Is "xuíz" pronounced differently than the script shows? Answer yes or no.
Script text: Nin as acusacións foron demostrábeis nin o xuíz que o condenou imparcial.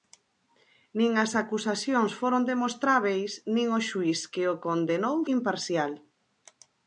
no